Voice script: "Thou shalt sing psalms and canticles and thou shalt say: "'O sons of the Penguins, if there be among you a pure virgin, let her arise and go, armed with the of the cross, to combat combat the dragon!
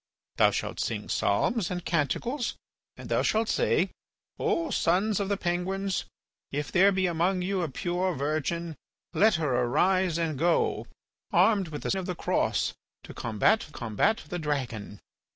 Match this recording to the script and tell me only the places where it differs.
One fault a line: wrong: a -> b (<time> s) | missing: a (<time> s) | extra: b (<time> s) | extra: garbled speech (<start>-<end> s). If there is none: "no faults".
no faults